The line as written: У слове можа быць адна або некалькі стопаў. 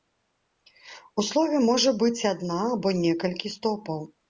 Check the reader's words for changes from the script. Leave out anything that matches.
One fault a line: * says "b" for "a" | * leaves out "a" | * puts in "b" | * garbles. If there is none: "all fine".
all fine